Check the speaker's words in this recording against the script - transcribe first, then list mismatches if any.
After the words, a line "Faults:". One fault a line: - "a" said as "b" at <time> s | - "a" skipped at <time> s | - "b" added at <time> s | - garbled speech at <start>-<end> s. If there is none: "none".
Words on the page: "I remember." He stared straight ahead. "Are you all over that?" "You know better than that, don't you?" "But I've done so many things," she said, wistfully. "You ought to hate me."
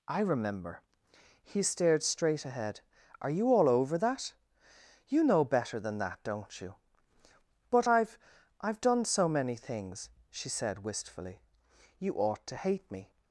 "I remember." He stared straight ahead. "Are you all over that?" "You know better than that, don't you?" "But I've I've done so many things," she said, wistfully. "You ought to hate me."
Faults:
- "I've" added at 8.6 s